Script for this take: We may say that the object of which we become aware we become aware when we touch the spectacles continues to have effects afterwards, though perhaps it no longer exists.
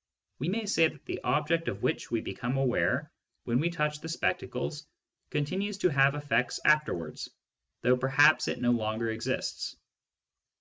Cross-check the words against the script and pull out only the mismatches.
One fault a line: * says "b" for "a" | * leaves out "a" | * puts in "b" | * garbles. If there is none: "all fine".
* leaves out "we become aware"